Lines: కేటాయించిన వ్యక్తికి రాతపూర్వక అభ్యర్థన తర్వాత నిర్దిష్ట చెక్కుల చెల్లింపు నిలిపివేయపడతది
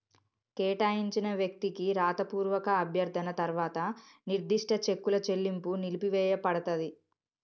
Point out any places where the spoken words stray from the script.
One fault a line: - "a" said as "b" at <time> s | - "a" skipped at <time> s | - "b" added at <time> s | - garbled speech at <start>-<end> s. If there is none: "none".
none